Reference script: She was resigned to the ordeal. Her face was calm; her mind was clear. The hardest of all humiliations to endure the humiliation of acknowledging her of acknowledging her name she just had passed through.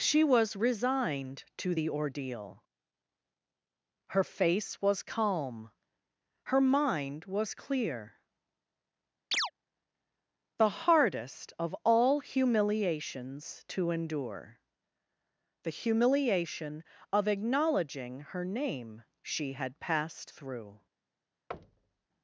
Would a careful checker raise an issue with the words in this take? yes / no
yes